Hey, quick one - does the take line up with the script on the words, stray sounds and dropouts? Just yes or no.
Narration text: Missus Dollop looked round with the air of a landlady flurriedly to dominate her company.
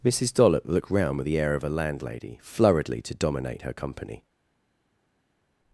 yes